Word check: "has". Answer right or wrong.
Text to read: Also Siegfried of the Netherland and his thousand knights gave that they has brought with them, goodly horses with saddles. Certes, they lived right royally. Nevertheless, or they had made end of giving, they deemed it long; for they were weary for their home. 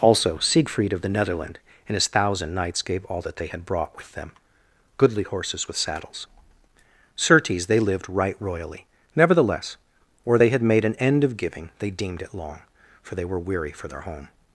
wrong